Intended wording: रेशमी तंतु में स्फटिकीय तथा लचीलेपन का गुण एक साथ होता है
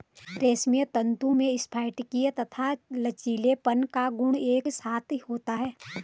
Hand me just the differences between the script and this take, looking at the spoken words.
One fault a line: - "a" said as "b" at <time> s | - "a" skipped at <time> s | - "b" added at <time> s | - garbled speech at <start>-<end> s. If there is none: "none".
none